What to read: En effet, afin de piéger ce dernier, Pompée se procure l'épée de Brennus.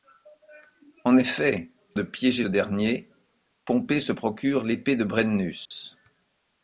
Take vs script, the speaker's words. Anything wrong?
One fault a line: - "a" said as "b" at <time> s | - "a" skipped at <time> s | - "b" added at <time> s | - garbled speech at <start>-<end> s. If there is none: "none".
- "afin" skipped at 1.7 s
- "ce" skipped at 2.5 s